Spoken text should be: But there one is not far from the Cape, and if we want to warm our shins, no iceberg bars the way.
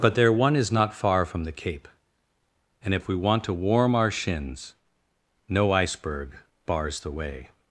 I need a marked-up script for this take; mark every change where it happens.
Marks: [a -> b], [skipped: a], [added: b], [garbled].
But there one is not far from the Cape, and if we want to warm our shins, no iceberg bars the way.